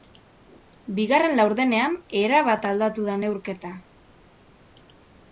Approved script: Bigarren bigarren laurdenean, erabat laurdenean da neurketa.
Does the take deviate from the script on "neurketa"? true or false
false